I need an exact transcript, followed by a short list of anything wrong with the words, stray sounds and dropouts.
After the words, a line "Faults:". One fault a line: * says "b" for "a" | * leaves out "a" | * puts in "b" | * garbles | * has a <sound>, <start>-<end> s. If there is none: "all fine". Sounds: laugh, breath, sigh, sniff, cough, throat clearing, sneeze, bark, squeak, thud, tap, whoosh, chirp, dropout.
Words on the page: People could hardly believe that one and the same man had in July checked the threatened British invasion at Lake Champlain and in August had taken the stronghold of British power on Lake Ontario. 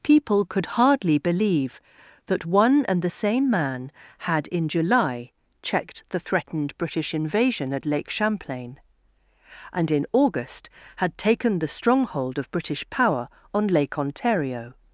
People could hardly believe that one and the same man had in July checked the threatened British invasion at Lake Champlain and in August had taken the stronghold of British power on Lake Ontario.
Faults:
all fine